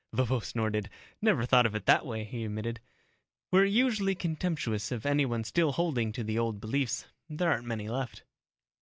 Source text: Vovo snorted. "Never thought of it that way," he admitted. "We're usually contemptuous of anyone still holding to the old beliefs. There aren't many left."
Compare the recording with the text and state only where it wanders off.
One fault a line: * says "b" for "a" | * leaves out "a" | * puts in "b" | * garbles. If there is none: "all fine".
all fine